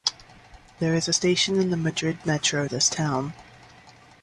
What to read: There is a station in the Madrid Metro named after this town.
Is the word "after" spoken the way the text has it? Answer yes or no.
no